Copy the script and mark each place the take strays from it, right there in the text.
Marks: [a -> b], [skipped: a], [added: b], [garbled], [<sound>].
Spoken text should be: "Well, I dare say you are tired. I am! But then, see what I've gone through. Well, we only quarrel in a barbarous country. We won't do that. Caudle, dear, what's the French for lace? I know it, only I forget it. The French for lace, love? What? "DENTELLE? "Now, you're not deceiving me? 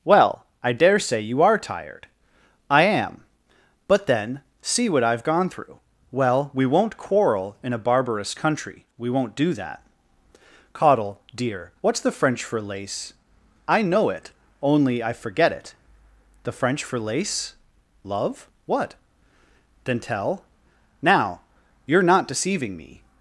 "Well, I dare say you are tired. I am! But then, see what I've gone through. Well, we [only -> won't] quarrel in a barbarous country. We won't do that. Caudle, dear, what's the French for lace? I know it, only I forget it. The French for lace, love? What? "DENTELLE? "Now, you're not deceiving me?